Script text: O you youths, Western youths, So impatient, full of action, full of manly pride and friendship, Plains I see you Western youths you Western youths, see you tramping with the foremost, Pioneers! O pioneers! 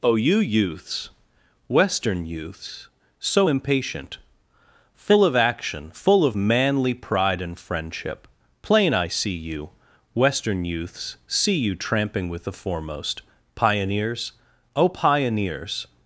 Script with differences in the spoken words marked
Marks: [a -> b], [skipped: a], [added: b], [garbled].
O you youths, Western youths, So impatient, full of action, full of manly pride and friendship, [Plains -> Plain] I see you Western youths [skipped: you Western youths,] see you tramping with the foremost, Pioneers! O pioneers!